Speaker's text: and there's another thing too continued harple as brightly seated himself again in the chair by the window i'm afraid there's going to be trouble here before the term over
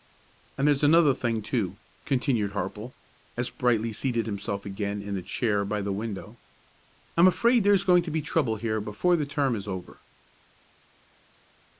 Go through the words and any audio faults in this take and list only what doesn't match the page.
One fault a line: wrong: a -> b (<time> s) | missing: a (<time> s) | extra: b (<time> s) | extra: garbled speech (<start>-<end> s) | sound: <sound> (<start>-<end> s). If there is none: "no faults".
extra: is (9.5 s)